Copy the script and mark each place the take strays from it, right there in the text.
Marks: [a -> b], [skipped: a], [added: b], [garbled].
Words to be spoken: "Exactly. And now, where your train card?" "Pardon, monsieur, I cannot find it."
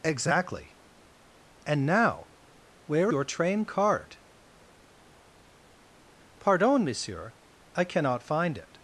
"Exactly. And now, where your train card?" "Pardon, monsieur, I cannot find it."